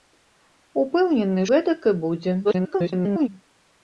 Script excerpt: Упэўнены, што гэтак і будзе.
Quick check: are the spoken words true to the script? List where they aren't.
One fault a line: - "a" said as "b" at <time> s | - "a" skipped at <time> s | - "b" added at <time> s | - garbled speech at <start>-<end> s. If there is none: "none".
- "што" skipped at 1.4 s
- garbled speech at 2.4-3.3 s